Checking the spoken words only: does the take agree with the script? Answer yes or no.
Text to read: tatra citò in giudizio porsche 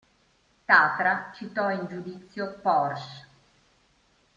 yes